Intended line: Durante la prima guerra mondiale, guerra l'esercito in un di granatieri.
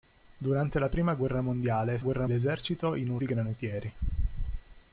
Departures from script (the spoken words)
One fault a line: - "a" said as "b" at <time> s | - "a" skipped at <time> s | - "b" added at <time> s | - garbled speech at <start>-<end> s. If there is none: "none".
none